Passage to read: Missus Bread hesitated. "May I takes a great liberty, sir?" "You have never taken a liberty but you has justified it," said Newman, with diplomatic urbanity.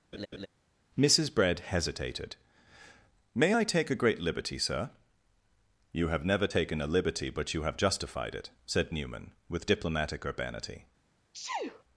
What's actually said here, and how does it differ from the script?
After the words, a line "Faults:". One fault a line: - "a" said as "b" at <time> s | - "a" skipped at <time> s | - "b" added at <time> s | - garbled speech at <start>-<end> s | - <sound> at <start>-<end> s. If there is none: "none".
Missus Bread hesitated. "May I take a great liberty, sir?" "You have never taken a liberty but you have justified it," said Newman, with diplomatic urbanity.
Faults:
- laugh at 0.1-0.5 s
- "takes" said as "take" at 3.6 s
- "has" said as "have" at 7.6 s
- sneeze at 11.3-11.8 s